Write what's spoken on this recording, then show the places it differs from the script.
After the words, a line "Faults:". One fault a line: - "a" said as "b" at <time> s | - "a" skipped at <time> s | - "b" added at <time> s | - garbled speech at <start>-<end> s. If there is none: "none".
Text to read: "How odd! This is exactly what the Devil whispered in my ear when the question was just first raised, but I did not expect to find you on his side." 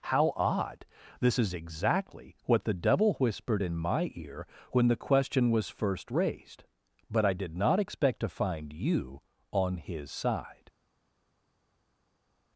"How odd! This is exactly what the Devil whispered in my ear when the question was first raised, but I did not expect to find you on his side."
Faults:
- "just" skipped at 5.7 s